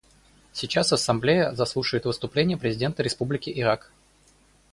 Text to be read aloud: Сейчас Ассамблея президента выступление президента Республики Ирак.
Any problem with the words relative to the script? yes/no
yes